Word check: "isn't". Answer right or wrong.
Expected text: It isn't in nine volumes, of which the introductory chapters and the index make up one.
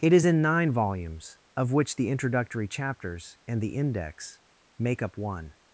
wrong